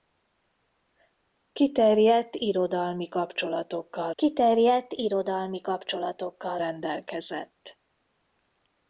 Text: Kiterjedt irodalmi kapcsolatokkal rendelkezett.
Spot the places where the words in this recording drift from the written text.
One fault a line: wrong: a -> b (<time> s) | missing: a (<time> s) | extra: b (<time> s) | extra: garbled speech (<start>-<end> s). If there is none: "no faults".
extra: kiterjedt irodalmi kapcsolatokkal (4.2 s)